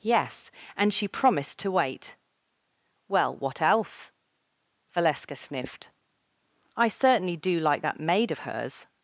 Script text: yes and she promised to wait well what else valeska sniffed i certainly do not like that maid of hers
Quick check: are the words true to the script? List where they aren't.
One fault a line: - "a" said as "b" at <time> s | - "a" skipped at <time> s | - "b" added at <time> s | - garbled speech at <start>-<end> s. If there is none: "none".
- "not" skipped at 7.6 s